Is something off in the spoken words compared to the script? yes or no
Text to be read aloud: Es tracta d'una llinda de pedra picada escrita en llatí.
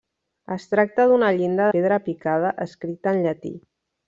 yes